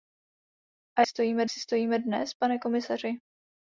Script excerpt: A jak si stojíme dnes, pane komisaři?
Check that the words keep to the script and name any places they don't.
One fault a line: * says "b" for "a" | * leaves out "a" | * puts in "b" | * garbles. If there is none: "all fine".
* says "stojíme" for "jak"